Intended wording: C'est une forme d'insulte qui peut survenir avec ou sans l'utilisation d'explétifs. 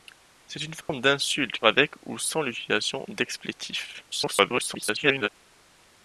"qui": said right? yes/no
no